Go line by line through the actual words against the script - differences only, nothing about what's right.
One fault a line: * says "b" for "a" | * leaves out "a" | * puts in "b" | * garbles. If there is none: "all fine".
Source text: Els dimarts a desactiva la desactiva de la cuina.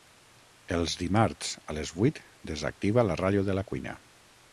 * puts in "les vuit"
* says "ràdio" for "desactiva"